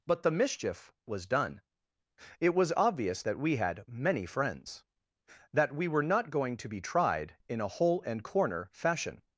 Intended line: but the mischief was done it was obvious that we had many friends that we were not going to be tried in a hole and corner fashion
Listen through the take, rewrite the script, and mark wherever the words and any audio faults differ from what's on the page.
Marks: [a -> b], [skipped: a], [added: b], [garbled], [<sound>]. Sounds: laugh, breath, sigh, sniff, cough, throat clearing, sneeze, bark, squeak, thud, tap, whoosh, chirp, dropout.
but the mischief was done it was obvious that we had many friends that we were not going to be tried in a hole and corner fashion